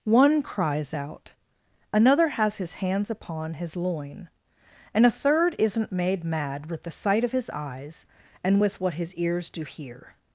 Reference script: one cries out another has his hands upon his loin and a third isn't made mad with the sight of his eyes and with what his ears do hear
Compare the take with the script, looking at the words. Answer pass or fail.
pass